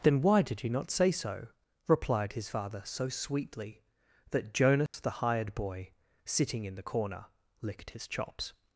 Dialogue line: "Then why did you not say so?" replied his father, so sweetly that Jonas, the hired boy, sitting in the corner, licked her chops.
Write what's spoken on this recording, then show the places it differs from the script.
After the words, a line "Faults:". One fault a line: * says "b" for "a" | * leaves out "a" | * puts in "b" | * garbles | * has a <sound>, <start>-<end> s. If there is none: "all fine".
"Then why did you not say so?" replied his father, so sweetly that Jonas, the hired boy, sitting in the corner, licked his chops.
Faults:
* has a dropout, 4.9-4.9 s
* says "his" for "her"